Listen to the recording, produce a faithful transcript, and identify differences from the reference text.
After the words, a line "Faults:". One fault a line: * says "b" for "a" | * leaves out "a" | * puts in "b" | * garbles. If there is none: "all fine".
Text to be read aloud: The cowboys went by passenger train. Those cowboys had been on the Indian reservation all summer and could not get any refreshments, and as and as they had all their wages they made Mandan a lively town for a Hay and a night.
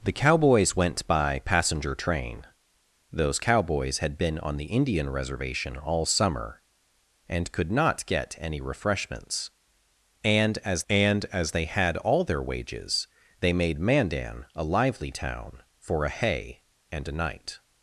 The cowboys went by passenger train. Those cowboys had been on the Indian reservation all summer and could not get any refreshments, and as and as they had all their wages they made Mandan a lively town for a Hay and a night.
Faults:
all fine